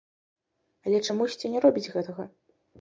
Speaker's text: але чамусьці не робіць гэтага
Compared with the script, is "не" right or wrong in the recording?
right